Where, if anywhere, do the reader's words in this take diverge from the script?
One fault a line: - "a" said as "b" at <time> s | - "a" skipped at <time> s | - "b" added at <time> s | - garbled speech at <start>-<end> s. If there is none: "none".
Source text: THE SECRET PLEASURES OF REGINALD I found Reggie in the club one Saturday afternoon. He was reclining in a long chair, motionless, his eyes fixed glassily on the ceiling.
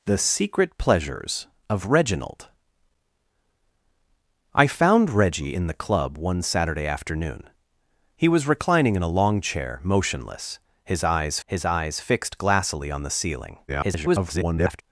- "his eyes" added at 11.4 s
- garbled speech at 13.7-14.8 s